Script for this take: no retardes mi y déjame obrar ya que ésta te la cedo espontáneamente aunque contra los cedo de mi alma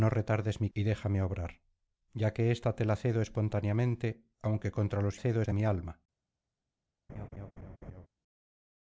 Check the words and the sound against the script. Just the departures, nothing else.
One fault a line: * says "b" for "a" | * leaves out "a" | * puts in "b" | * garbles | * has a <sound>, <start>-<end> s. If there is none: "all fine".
* has a laugh, 7.1-8.1 s